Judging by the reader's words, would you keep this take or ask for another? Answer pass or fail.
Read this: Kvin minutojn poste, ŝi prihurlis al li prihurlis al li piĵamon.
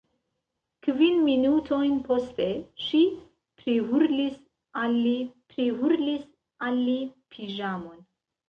pass